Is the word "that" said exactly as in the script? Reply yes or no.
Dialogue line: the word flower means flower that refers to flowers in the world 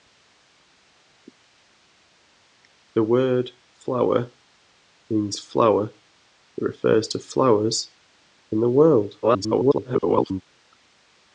yes